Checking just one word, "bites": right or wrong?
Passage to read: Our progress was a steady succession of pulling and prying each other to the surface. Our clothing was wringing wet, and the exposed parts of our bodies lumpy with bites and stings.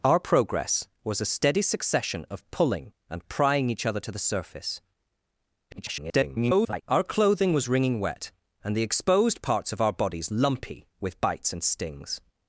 right